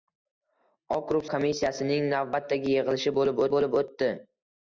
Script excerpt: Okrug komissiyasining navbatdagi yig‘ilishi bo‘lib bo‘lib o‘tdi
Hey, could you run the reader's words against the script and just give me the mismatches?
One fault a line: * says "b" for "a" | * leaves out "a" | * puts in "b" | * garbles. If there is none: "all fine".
all fine